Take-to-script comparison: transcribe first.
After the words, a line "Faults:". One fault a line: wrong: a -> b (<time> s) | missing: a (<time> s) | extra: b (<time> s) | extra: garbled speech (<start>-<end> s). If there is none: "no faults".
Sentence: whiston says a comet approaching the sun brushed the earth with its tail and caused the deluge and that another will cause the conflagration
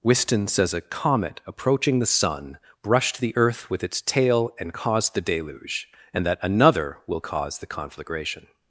whiston says a comet approaching the sun brushed the earth with its tail and caused the deluge and that another will cause the conflagration
Faults:
no faults